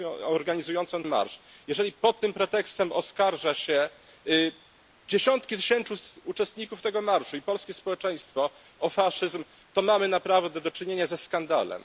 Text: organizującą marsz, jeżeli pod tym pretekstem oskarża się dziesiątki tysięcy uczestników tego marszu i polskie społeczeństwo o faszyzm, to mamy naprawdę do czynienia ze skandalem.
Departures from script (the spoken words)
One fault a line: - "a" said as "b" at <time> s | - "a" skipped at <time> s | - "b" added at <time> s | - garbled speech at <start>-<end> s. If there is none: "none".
none